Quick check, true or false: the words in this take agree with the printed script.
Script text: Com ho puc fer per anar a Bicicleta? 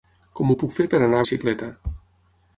true